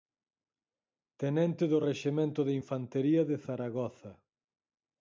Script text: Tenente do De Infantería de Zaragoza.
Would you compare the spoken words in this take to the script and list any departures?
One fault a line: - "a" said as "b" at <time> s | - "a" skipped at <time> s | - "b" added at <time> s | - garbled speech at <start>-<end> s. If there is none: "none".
- "Rexemento" added at 1.9 s